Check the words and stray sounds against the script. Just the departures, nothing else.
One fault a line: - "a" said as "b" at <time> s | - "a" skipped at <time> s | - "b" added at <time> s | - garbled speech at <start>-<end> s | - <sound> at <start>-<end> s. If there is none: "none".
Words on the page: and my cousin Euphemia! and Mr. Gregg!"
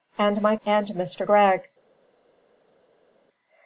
- "cousin Euphemia" skipped at 0.6 s